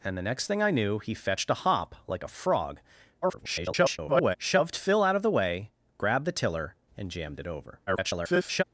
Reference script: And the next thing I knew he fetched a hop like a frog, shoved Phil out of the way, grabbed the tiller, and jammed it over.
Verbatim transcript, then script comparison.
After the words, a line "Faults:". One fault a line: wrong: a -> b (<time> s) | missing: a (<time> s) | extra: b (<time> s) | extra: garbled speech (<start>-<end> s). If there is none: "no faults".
And the next thing I knew he fetched a hop like a frog, [garbled] shoved Phil out of the way, grabbed the tiller, and jammed it over. [garbled]
Faults:
extra: garbled speech (3.2-4.4 s)
extra: garbled speech (7.9-8.6 s)